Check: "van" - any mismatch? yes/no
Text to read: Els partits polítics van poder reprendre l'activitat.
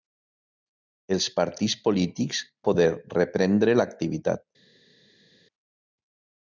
yes